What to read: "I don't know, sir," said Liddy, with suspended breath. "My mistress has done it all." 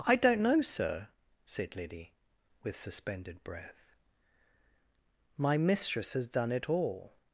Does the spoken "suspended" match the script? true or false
true